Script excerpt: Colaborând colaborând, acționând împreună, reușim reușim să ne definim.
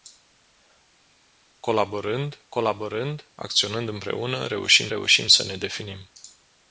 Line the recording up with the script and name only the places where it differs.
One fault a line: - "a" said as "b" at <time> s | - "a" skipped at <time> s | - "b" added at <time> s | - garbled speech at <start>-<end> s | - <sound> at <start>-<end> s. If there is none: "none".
none